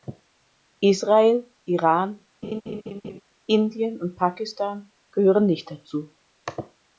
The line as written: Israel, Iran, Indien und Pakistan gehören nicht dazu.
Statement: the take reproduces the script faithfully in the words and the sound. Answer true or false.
false